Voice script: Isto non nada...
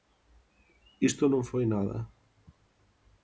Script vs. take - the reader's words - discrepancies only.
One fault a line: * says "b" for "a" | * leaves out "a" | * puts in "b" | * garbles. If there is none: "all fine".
* puts in "foi"